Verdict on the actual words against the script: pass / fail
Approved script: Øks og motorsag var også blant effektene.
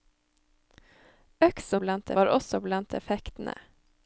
fail